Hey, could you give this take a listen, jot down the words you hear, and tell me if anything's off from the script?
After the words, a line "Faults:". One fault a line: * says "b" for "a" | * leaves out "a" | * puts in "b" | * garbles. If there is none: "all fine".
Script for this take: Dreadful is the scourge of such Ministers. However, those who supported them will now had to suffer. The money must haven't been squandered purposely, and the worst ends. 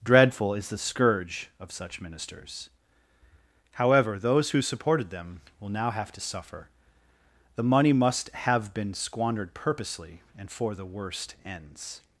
Dreadful is the scourge of such Ministers. However, those who supported them will now have to suffer. The money must have been squandered purposely, and for the worst ends.
Faults:
* says "have" for "had"
* says "have" for "haven't"
* puts in "for"